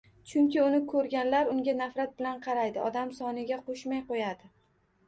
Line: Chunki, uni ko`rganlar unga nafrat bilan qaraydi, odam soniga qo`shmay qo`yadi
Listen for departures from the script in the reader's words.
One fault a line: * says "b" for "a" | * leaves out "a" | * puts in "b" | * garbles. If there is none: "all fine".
all fine